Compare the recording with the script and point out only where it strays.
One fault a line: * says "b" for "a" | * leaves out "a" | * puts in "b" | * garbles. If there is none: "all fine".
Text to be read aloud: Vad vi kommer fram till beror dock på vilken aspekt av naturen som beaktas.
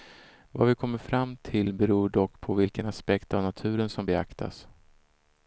all fine